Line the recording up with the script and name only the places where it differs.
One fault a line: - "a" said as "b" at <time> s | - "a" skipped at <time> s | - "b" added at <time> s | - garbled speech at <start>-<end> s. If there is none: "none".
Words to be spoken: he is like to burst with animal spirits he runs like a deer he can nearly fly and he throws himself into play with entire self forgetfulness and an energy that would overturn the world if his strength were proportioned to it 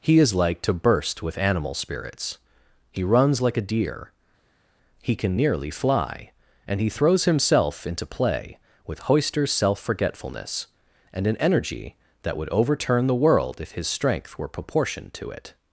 - "entire" said as "hoister" at 9.1 s